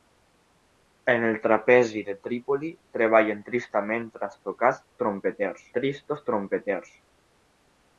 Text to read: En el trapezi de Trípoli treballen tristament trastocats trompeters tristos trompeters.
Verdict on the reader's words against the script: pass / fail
pass